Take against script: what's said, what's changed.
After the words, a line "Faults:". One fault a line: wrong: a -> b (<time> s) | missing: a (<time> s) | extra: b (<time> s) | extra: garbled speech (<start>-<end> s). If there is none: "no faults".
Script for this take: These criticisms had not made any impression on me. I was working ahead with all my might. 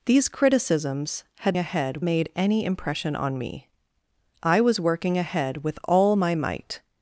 These criticisms had ahead made any impression on me. I was working ahead with all my might.
Faults:
wrong: not -> ahead (1.6 s)